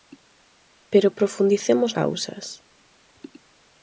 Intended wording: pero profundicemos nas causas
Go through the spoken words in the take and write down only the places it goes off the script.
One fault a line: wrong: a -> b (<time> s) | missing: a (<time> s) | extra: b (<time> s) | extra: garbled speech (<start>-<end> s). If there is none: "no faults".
missing: nas (1.9 s)